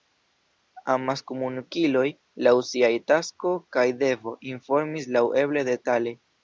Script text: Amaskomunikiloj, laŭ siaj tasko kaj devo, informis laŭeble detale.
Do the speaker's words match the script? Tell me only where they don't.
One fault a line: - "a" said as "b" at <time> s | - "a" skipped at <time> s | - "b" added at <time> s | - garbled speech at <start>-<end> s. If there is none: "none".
none